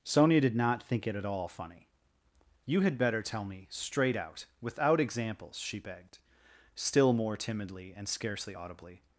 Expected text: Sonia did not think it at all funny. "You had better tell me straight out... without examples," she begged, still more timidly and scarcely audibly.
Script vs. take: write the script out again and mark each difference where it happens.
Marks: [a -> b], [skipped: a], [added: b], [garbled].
Sonia did not think it at all funny. "You had better tell me straight out... without examples," she begged, still more timidly and scarcely audibly.